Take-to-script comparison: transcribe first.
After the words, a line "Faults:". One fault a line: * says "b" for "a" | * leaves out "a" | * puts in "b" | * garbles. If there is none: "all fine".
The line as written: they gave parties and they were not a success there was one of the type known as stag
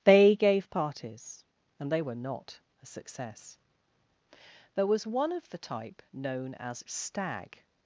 they gave parties and they were not a success there was one of the type known as stag
Faults:
all fine